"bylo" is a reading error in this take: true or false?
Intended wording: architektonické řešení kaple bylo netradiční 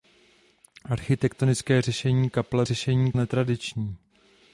true